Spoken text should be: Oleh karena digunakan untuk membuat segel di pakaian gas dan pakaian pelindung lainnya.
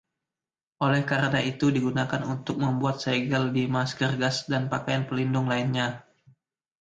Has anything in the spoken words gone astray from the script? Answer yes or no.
yes